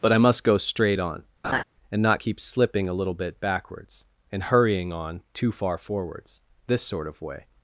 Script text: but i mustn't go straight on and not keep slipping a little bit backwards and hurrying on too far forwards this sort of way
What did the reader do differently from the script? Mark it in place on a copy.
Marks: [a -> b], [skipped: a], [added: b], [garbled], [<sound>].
but i [mustn't -> must] go straight on [laugh] and not keep slipping a little bit backwards and hurrying on too far forwards this sort of way